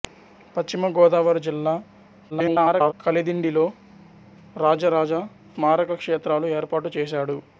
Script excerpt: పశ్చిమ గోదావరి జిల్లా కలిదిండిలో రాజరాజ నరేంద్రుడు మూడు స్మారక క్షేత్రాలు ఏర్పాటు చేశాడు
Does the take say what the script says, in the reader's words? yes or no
no